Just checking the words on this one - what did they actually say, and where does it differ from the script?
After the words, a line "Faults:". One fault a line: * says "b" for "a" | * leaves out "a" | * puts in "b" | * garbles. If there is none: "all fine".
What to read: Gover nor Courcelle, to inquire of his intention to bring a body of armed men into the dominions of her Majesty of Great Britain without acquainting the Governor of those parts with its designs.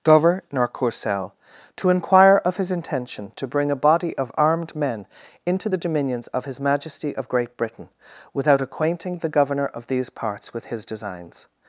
Gover nor Courcelle, to inquire of his intention to bring a body of armed men into the dominions of his Majesty of Great Britain without acquainting the Governor of these parts with his designs.
Faults:
* says "his" for "her"
* says "these" for "those"
* says "his" for "its"